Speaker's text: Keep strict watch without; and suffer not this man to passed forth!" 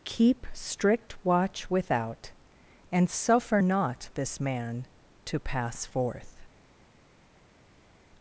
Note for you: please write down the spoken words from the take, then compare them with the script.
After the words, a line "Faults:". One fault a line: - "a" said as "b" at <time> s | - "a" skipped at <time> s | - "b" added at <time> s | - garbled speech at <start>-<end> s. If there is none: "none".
Keep strict watch without; and suffer not this man to pass forth!"
Faults:
- "passed" said as "pass" at 5.4 s